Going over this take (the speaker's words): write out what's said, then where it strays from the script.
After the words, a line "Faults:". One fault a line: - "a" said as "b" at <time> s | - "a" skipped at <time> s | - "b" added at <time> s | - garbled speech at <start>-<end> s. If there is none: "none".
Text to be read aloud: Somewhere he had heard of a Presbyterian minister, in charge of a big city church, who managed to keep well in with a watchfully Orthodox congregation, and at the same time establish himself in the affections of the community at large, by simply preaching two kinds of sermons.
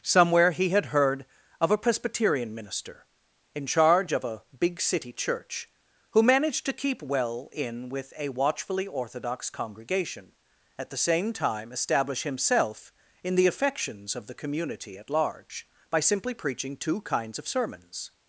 Somewhere he had heard of a Presbyterian minister, in charge of a big city church, who managed to keep well in with a watchfully Orthodox congregation, at the same time establish himself in the affections of the community at large, by simply preaching two kinds of sermons.
Faults:
- "and" skipped at 10.3 s